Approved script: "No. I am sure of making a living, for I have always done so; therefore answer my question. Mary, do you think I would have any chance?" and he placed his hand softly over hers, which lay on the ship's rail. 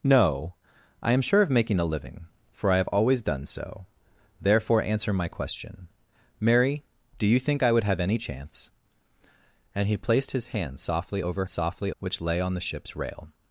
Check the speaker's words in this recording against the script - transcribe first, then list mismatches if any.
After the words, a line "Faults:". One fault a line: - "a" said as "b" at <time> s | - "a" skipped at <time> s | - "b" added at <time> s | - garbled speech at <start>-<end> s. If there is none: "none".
"No. I am sure of making a living, for I have always done so; therefore answer my question. Mary, do you think I would have any chance?" and he placed his hand softly over softly, which lay on the ship's rail.
Faults:
- "hers" said as "softly" at 11.5 s